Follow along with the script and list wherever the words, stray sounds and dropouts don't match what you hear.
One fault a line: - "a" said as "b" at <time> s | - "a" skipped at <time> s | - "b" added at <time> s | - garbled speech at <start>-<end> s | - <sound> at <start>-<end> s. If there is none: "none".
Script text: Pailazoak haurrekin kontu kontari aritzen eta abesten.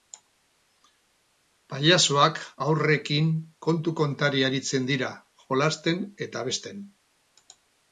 - "dira jolasten" added at 4.9 s